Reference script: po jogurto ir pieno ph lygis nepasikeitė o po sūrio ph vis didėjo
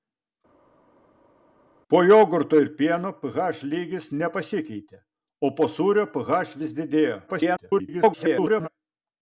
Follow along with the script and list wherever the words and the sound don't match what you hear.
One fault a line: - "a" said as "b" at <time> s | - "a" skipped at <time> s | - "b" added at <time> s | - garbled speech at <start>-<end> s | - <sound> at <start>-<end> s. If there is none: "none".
- garbled speech at 7.3-8.7 s